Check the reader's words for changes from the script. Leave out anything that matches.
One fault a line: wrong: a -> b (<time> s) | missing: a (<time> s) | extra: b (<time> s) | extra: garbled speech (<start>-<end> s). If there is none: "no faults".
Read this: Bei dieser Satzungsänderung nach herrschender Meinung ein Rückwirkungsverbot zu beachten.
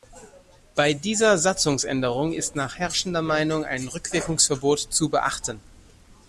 extra: ist (2.3 s)